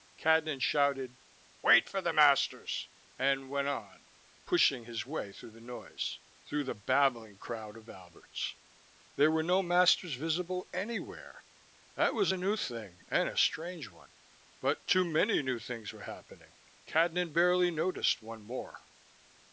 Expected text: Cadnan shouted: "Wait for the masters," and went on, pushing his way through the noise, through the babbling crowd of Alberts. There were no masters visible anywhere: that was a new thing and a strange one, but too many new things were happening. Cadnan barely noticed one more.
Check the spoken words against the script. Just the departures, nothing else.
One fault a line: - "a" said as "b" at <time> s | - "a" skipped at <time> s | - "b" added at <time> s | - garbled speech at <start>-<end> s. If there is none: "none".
none